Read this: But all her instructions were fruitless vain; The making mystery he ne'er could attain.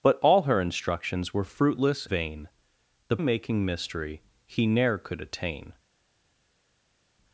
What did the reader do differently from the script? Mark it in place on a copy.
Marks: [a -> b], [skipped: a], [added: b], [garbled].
But all her instructions were fruitless vain; The making mystery he ne'er could attain.